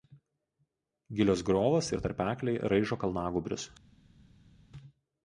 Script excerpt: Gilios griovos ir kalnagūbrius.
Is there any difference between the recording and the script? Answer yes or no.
yes